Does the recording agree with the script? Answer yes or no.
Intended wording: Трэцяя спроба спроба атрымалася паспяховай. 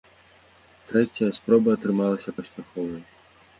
no